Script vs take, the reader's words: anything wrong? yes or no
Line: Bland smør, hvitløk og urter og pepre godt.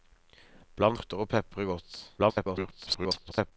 yes